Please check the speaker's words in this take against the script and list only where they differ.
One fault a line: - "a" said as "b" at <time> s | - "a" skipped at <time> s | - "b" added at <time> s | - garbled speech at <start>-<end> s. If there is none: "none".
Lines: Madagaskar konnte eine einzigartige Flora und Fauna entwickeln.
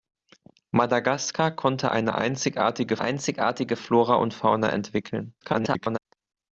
- "einzigartige" added at 3.0 s
- garbled speech at 5.4-6.0 s